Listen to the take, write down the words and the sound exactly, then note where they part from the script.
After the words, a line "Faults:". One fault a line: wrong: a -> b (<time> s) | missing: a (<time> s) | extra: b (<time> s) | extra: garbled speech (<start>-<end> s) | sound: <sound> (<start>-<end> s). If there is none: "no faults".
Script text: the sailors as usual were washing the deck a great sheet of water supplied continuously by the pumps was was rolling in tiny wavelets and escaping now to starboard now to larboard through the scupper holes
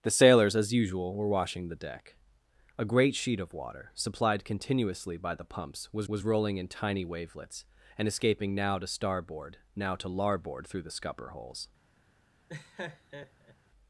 the sailors as usual were washing the deck a great sheet of water supplied continuously by the pumps was was rolling in tiny wavelets and escaping now to starboard now to larboard through the scupper holes
Faults:
sound: laugh (12.5-13.6 s)